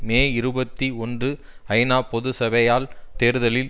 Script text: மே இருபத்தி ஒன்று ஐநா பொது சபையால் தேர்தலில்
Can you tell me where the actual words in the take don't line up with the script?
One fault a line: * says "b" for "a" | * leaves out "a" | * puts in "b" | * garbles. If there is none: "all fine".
all fine